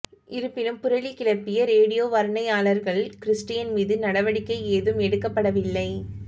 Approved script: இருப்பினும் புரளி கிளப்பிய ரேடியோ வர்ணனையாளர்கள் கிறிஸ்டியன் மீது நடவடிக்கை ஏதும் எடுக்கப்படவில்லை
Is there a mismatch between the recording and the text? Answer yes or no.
no